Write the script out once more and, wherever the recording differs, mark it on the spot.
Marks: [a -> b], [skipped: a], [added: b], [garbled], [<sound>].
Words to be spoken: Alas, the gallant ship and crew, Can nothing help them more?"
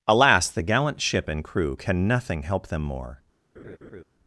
Alas, the gallant ship and crew, Can nothing help them more?" [laugh]